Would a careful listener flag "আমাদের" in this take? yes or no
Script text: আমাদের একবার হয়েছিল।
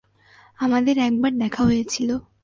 no